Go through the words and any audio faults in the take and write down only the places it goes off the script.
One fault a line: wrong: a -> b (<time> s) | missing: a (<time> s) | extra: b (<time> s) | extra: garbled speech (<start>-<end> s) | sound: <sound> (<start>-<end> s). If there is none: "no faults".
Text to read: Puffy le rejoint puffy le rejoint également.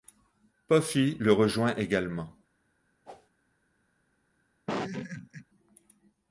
missing: puffy le rejoint (1.7 s)
sound: whoosh (3.0-3.3 s)
sound: laugh (4.7-5.4 s)